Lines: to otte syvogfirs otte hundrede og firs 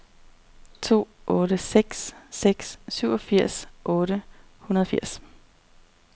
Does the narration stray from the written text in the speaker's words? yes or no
yes